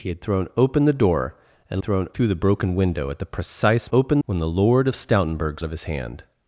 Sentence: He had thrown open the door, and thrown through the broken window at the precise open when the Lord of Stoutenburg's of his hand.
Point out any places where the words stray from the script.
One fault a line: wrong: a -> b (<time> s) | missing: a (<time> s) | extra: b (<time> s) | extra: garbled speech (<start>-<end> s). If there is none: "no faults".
no faults